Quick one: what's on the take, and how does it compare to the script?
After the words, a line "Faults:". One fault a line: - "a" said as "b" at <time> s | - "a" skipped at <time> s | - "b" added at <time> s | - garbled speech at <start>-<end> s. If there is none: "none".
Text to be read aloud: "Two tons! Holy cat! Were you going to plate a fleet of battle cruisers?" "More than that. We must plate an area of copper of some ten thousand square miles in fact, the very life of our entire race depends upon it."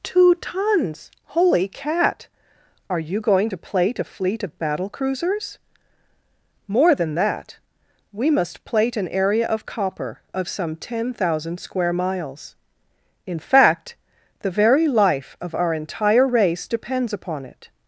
"Two tons! Holy cat! Are you going to plate a fleet of battle cruisers?" "More than that. We must plate an area of copper of some ten thousand square miles in fact, the very life of our entire race depends upon it."
Faults:
- "Were" said as "Are" at 2.9 s